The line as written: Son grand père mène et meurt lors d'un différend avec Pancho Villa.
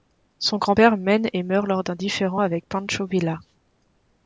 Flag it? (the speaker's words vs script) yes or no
no